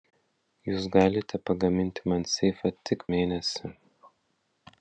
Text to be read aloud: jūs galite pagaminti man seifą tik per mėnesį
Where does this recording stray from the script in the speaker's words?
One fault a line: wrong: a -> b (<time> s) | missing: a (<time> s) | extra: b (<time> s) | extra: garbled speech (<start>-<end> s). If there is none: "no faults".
missing: per (3.1 s)